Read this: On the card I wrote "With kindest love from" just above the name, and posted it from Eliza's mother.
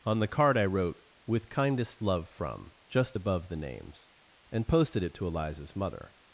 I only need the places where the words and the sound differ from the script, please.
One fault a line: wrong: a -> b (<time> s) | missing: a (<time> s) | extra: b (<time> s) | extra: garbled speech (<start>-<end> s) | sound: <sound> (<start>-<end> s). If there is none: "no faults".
wrong: name -> names (3.6 s)
wrong: from -> to (5.2 s)